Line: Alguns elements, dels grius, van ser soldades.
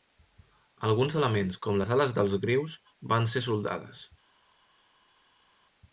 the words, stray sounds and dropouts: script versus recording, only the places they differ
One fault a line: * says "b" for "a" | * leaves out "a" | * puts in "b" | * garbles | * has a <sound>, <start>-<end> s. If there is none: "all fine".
* puts in "com les ales"